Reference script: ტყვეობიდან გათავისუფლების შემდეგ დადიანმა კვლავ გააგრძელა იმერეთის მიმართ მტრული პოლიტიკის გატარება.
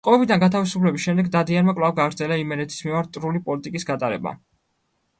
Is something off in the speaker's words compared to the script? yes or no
no